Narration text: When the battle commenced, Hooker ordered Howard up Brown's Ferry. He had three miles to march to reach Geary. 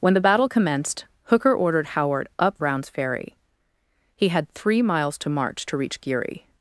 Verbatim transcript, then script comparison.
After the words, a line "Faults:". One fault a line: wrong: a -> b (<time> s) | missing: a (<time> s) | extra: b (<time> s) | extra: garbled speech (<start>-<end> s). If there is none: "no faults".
When the battle commenced, Hooker ordered Howard up Brown's Ferry. He had three miles to march to reach Geary.
Faults:
no faults